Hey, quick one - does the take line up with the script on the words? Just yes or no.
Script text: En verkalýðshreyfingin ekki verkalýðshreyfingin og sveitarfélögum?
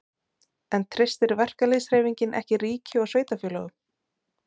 no